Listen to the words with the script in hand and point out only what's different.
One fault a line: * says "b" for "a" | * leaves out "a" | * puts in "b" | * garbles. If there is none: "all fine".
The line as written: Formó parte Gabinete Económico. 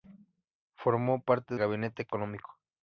all fine